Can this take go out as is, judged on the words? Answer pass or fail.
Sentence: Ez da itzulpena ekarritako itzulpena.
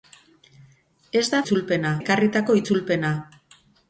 pass